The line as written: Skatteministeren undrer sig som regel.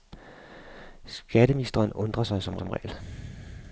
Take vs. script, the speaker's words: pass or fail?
fail